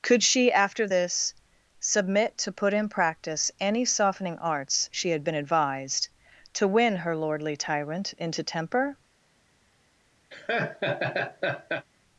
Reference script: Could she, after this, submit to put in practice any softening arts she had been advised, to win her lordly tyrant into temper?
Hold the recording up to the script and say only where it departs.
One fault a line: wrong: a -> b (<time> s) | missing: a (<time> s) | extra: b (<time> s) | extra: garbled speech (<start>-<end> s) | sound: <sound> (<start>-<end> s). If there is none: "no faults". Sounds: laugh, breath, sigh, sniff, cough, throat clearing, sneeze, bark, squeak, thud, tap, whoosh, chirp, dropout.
sound: laugh (10.3-11.9 s)